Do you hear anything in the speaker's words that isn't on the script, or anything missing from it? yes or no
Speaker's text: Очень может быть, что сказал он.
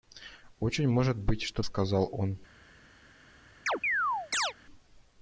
no